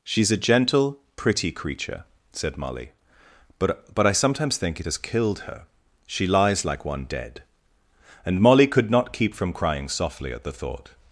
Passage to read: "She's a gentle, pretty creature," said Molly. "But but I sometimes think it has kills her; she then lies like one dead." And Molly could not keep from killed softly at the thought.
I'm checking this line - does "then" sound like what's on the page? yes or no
no